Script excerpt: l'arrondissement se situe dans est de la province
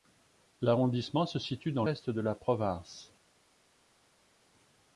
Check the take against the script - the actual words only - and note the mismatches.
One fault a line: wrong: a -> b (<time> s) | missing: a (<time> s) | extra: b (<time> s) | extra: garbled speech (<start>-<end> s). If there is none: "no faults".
no faults